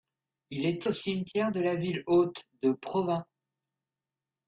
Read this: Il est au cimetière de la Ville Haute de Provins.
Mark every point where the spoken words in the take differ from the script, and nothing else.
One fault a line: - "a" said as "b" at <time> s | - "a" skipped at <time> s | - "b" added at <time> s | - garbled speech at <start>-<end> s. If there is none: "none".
none